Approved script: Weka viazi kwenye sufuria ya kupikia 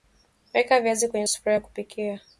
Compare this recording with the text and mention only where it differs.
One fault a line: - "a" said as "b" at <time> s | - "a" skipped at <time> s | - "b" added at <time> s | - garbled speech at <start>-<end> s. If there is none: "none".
none